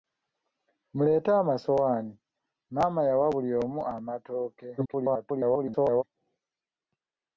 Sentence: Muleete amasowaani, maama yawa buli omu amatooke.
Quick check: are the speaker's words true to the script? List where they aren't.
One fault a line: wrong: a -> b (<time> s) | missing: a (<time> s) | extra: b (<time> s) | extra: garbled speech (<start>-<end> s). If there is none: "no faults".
extra: garbled speech (4.8-6.0 s)